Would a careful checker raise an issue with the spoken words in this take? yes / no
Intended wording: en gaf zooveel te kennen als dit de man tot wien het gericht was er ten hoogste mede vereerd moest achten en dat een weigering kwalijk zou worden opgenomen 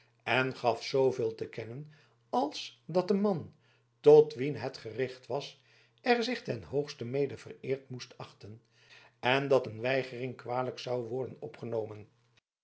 yes